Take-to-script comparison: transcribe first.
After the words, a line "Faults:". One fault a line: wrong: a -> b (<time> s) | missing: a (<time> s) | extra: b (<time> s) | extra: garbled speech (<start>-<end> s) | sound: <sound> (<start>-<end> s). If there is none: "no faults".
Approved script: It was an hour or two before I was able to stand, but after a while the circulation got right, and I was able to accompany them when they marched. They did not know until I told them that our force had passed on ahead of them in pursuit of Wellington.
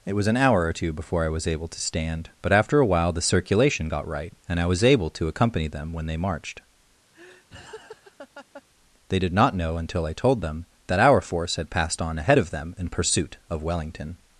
It was an hour or two before I was able to stand, but after a while the circulation got right, and I was able to accompany them when they marched. They did not know until I told them that our force had passed on ahead of them in pursuit of Wellington.
Faults:
sound: laugh (7.1-8.6 s)